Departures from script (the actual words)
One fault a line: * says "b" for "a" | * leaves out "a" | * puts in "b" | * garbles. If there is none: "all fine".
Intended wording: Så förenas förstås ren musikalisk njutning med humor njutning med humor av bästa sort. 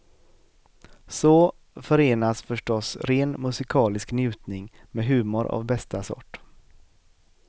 * leaves out "njutning med humor"